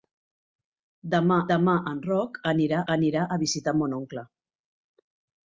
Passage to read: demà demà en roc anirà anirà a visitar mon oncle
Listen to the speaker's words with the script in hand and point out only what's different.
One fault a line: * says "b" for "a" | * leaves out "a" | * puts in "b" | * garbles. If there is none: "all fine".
all fine